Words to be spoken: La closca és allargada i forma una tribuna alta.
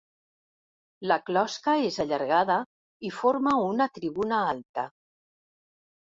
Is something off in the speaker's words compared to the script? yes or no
no